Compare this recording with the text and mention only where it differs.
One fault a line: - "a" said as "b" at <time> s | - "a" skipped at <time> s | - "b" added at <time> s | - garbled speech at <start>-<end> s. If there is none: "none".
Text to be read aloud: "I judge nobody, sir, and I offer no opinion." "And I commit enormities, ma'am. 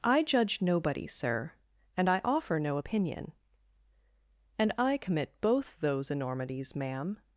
- "both those" added at 5.4 s